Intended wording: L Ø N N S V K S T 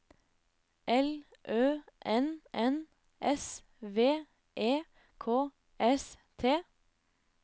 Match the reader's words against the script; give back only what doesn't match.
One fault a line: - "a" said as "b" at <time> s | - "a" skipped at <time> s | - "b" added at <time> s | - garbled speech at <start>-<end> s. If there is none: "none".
- "E" added at 4.6 s